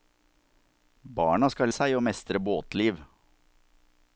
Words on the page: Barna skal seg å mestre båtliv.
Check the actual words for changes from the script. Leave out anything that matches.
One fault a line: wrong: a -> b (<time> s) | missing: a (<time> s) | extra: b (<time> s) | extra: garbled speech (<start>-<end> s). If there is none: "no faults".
no faults